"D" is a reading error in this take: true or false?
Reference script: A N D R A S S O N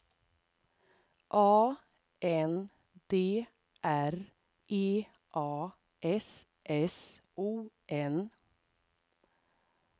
false